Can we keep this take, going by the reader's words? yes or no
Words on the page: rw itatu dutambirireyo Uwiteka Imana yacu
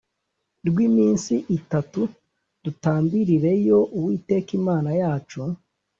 no